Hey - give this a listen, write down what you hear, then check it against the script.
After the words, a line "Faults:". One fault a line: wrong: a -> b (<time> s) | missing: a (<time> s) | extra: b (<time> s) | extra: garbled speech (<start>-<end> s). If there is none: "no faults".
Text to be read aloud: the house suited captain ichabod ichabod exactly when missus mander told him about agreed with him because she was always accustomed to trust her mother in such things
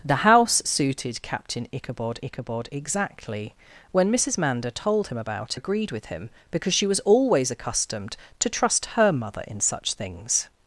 the house suited captain ichabod ichabod exactly when missus mander told him about agreed with him because she was always accustomed to trust her mother in such things
Faults:
no faults